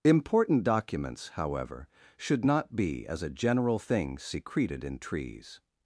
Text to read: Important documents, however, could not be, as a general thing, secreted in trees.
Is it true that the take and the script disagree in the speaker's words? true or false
true